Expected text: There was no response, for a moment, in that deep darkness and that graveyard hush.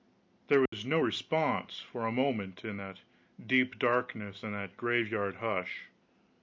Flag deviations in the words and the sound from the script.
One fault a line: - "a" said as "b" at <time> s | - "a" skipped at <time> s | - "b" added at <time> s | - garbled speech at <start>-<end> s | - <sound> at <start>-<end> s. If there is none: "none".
- dropout at 0.7-0.7 s